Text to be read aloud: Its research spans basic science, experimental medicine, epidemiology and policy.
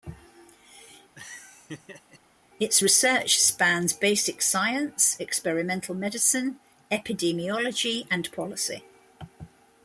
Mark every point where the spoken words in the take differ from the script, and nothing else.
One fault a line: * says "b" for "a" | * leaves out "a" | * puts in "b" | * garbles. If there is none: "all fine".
all fine